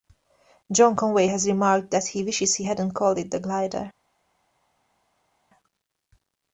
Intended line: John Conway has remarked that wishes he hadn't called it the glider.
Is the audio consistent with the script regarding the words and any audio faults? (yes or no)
no